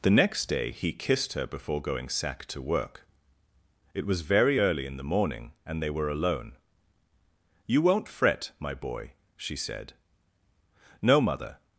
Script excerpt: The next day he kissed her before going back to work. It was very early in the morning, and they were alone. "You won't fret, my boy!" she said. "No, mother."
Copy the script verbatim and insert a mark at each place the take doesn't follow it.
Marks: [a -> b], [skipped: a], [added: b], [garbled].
The next day he kissed her before going [back -> sack] to work. It was very early in the morning, and they were alone. "You won't fret, my boy!" she said. "No, mother."